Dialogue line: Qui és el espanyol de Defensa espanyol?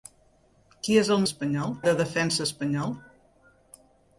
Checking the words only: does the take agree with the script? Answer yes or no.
yes